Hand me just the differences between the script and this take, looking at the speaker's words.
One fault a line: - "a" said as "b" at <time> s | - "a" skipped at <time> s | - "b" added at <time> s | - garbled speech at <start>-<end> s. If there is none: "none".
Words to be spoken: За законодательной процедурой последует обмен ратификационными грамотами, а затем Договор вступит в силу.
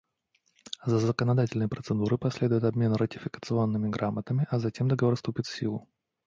none